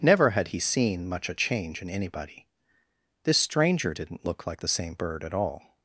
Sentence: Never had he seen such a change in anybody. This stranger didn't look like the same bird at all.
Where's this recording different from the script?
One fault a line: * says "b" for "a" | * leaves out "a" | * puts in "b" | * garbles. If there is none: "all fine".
* says "much" for "such"